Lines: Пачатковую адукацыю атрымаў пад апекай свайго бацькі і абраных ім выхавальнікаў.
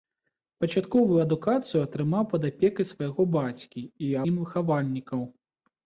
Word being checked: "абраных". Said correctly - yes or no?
no